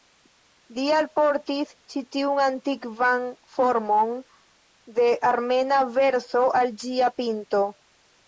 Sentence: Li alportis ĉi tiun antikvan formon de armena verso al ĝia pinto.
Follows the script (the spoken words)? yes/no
yes